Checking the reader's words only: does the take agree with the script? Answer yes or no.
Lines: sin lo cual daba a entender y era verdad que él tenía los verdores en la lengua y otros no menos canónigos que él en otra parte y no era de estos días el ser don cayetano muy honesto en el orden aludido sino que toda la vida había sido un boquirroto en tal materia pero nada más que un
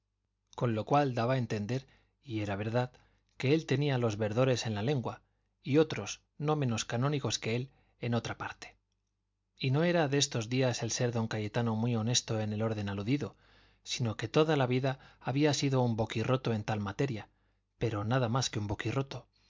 no